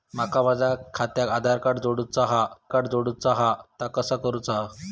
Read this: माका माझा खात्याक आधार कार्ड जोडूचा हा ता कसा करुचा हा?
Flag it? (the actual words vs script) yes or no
yes